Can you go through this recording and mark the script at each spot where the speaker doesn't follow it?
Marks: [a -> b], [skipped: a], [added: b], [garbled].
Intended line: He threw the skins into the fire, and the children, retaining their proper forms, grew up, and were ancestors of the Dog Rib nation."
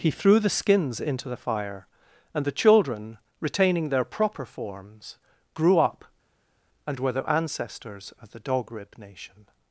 He threw the skins into the fire, and the children, retaining their proper forms, grew up, and were [added: the] ancestors of the Dog Rib nation."